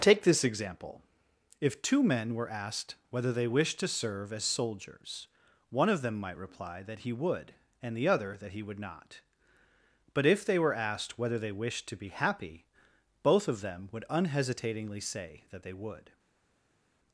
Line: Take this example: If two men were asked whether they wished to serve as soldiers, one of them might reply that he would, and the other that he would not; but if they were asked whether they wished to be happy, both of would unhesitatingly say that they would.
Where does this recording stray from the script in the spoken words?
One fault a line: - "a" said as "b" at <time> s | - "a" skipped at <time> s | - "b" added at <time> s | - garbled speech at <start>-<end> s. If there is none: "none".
- "them" added at 13.6 s